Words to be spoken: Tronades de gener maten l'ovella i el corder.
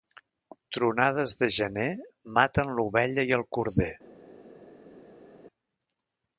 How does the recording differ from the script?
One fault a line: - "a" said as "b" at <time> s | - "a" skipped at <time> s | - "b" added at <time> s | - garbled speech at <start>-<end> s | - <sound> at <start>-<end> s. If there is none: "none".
none